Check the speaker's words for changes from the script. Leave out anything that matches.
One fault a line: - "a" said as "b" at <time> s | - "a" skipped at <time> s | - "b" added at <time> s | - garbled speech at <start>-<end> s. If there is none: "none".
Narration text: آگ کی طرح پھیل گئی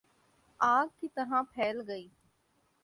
none